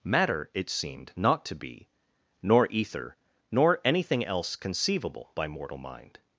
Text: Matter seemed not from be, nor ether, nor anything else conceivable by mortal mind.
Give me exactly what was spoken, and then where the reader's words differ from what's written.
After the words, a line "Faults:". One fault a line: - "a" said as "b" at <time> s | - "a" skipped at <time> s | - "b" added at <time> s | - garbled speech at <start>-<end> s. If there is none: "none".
Matter it seemed not to be, nor ether, nor anything else conceivable by mortal mind.
Faults:
- "it" added at 0.5 s
- "from" said as "to" at 1.5 s